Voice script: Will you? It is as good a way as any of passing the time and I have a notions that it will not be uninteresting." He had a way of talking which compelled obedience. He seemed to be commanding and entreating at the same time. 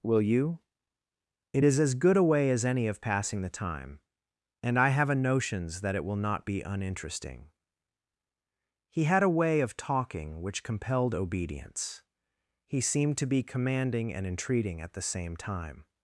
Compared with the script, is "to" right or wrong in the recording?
right